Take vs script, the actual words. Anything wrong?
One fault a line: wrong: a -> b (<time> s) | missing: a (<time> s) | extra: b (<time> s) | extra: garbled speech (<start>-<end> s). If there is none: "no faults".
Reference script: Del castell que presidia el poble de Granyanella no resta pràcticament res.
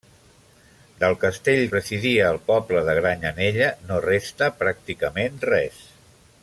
missing: que (1.6 s)